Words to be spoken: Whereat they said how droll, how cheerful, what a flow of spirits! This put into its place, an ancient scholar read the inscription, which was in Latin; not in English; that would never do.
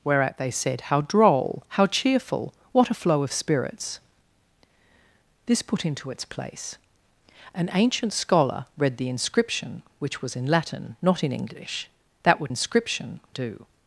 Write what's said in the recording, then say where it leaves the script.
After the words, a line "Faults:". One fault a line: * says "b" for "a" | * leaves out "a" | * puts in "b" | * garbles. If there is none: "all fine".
Whereat they said how droll, how cheerful, what a flow of spirits! This put into its place, an ancient scholar read the inscription, which was in Latin; not in English; that would inscription do.
Faults:
* says "inscription" for "never"